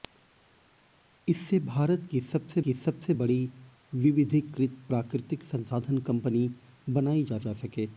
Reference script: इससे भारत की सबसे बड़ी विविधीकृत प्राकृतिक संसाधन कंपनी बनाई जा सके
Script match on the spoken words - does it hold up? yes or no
no